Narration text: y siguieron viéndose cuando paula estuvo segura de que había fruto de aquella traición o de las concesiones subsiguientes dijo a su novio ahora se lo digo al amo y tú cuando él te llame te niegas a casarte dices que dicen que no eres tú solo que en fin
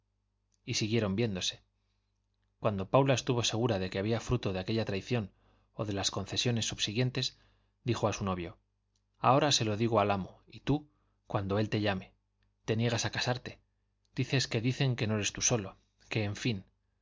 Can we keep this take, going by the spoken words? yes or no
yes